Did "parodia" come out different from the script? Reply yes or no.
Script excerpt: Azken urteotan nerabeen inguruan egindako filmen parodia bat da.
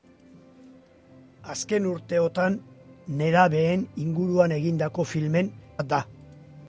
yes